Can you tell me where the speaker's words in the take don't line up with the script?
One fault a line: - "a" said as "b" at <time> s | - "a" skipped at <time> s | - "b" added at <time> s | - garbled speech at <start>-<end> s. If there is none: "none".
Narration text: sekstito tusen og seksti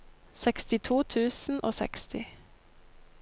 none